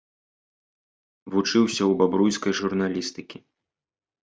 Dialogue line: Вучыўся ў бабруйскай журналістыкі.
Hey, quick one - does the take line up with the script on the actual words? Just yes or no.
yes